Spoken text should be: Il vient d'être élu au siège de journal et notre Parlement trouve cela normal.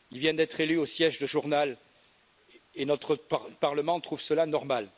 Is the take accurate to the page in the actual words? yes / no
yes